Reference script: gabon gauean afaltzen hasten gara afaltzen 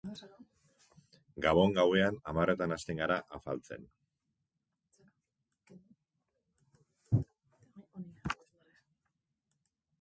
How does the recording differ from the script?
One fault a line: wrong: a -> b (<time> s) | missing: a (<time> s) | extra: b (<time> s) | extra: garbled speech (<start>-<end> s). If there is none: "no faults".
wrong: afaltzen -> hamarretan (2.3 s)